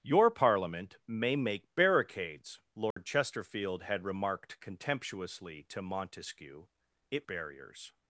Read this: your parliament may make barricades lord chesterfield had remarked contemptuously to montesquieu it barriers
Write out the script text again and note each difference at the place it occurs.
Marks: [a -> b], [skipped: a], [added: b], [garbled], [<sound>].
your parliament may make barricades lord [dropout] chesterfield had remarked contemptuously to montesquieu it barriers